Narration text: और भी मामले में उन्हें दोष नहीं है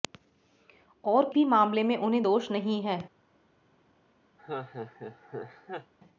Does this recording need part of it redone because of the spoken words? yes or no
no